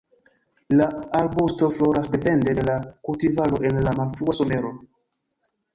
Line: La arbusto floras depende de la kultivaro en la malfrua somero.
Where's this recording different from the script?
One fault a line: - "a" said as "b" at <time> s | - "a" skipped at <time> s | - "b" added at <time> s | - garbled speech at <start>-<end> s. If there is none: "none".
none